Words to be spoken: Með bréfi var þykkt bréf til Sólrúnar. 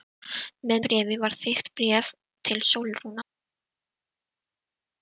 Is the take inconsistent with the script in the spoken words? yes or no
no